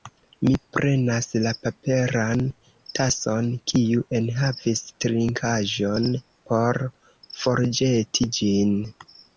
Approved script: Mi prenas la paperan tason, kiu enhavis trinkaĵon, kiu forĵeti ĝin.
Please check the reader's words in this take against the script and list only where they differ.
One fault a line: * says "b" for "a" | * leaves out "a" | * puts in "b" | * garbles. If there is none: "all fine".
* says "por" for "kiu"